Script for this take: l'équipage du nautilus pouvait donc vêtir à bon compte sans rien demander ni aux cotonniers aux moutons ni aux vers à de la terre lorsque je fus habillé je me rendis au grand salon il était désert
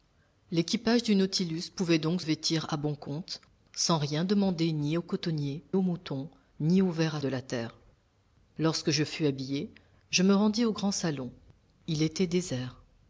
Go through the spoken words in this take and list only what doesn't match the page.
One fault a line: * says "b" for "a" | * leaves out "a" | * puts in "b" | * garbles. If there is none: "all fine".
all fine